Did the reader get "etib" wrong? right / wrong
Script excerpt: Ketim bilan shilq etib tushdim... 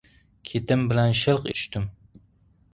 wrong